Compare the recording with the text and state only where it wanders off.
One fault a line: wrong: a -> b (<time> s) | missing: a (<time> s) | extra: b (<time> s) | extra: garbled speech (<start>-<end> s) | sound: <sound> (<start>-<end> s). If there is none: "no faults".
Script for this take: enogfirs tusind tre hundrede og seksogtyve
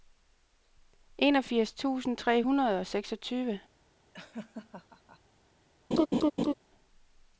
sound: laugh (4.1-5.2 s)
sound: laugh (5.9-6.5 s)